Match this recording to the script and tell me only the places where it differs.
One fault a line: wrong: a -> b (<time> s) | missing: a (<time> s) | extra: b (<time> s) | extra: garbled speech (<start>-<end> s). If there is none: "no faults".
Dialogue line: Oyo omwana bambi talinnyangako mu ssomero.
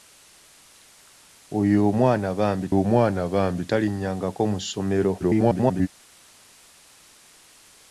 extra: omwana bambi (2.8 s)
extra: garbled speech (5.2-5.9 s)